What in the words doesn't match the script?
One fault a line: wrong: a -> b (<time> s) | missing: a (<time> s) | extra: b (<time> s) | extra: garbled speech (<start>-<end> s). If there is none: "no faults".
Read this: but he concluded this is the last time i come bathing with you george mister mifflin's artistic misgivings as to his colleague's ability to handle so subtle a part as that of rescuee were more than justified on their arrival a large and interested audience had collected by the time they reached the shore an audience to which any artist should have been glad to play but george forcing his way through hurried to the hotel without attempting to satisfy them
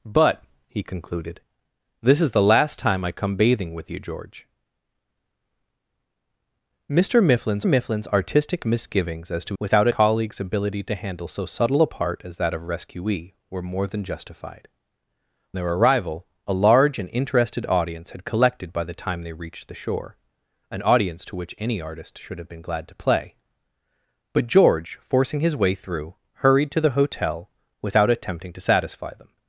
extra: mifflin's (7.6 s)
wrong: his -> without (9.6 s)
missing: on (14.7 s)